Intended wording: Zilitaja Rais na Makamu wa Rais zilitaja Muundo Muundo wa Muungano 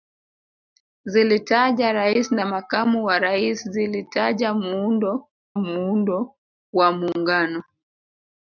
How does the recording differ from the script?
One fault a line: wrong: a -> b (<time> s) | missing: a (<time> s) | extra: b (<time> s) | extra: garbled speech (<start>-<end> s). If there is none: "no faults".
no faults